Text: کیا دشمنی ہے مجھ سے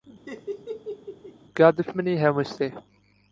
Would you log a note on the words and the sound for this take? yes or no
yes